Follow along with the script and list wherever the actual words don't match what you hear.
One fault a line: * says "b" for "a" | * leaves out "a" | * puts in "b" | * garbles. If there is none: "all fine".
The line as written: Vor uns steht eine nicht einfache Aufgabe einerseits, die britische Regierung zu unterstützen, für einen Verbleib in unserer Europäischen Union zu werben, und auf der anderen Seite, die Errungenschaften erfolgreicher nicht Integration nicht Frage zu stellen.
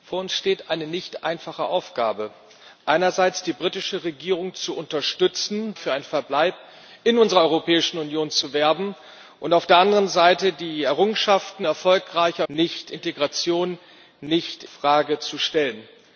all fine